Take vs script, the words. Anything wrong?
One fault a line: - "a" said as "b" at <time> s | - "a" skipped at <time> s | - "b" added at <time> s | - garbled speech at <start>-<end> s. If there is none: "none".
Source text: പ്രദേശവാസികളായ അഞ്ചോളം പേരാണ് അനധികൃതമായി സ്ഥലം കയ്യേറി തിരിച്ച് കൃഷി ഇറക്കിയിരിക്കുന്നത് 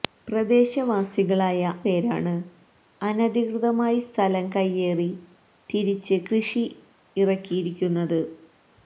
- "അഞ്ചോളം" skipped at 1.6 s